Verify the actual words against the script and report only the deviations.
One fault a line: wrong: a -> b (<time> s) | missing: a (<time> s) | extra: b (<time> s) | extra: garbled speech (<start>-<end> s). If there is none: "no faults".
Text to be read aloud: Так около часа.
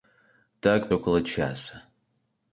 no faults